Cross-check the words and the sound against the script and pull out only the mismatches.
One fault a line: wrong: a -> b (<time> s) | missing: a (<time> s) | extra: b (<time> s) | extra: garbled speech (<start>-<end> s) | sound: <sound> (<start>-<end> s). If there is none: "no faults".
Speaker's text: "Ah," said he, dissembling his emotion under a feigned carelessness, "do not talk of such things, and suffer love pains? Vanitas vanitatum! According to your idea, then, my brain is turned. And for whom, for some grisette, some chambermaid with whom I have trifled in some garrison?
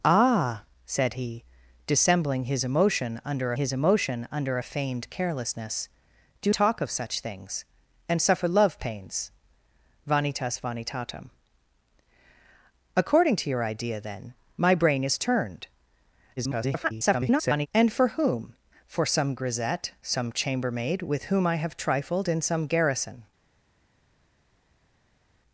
extra: his emotion under (3.5 s)
missing: not (6.5 s)
extra: garbled speech (16.4-17.7 s)